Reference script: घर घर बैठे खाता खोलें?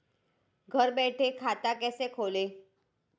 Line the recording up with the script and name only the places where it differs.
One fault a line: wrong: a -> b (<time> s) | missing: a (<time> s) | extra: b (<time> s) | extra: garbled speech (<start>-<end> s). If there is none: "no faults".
missing: घर (0.9 s)
extra: कैसे (1.7 s)